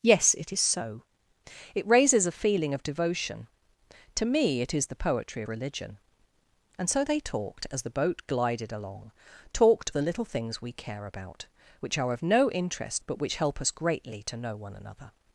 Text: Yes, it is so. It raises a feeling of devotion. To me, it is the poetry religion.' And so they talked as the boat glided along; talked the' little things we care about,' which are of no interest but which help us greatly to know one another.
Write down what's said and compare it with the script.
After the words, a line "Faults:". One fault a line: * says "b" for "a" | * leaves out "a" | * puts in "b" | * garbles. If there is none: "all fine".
Yes, it is so. It raises a feeling of devotion. To me, it is the poetry religion.' And so they talked as the boat glided along; talked the' little things we care about,' which are of no interest but which help us greatly to know one another.
Faults:
all fine